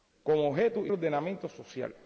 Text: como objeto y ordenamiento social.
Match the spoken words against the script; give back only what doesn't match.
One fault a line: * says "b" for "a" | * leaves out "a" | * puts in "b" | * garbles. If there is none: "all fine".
all fine